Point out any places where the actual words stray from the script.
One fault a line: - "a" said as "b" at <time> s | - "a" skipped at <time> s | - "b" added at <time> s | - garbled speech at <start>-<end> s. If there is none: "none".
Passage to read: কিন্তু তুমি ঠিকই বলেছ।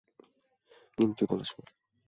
- "তুমি ঠিকই" skipped at 1.2 s